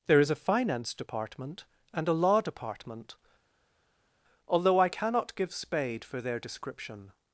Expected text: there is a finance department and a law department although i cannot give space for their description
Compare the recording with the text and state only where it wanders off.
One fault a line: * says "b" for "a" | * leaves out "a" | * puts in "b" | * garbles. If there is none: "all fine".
* says "spade" for "space"